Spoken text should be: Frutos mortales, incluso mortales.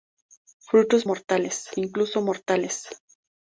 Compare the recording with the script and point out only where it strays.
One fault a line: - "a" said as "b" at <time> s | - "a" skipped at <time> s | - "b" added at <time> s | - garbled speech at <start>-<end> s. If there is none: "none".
none